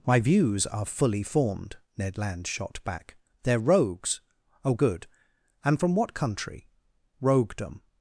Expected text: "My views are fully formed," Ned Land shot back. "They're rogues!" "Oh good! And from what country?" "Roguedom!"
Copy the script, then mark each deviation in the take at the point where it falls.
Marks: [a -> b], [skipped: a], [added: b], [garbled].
"My views are fully formed," Ned Land shot back. "They're rogues!" "Oh good! And from what country?" "Roguedom!"